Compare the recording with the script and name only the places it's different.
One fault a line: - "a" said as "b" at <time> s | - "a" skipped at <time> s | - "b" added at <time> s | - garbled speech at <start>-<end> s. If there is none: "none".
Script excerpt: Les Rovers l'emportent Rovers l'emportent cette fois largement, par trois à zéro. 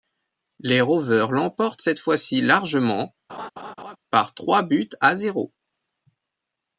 - "Rovers l'emportent" skipped at 1.8 s
- "ci" added at 2.2 s
- "buts" added at 4.6 s